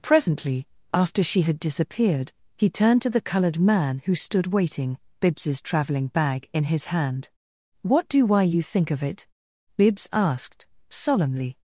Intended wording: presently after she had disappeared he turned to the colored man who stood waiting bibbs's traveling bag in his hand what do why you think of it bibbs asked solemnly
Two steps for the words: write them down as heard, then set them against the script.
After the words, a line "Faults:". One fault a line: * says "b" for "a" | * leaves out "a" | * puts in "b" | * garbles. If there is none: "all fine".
presently after she had disappeared he turned to the colored man who stood waiting bibbs's traveling bag in his hand what do why you think of it bibbs asked solemnly
Faults:
all fine